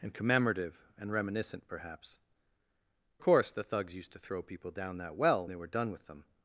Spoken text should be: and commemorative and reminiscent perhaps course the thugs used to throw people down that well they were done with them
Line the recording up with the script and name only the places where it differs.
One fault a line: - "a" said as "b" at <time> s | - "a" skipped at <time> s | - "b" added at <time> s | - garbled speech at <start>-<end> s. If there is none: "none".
none